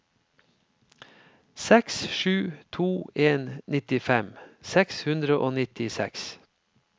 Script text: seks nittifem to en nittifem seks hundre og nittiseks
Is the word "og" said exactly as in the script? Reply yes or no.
yes